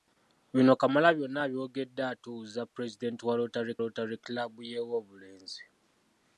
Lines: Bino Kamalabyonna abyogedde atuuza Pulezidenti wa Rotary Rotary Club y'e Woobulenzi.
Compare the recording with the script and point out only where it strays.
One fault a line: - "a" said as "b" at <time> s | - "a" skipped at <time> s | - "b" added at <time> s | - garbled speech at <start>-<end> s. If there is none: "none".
none